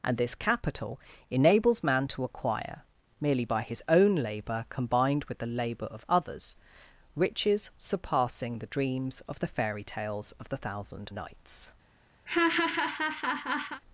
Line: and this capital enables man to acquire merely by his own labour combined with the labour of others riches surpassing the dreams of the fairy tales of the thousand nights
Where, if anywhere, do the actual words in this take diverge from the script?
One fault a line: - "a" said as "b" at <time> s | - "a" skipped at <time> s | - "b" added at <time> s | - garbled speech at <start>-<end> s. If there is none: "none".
none